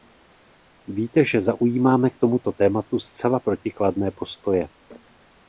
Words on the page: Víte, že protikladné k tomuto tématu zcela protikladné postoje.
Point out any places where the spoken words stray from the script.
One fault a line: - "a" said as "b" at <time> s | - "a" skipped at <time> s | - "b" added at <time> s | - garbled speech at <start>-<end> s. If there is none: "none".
- "protikladné" said as "zaujímáme" at 1.4 s